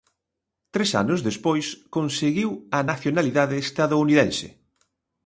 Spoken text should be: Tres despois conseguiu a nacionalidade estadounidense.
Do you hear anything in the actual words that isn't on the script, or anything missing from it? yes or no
yes